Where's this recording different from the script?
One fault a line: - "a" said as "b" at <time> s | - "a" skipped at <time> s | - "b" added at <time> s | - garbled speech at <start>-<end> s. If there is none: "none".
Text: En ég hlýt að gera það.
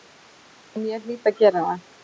none